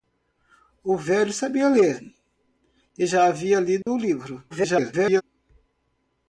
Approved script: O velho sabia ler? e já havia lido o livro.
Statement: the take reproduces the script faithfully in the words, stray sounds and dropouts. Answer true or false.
false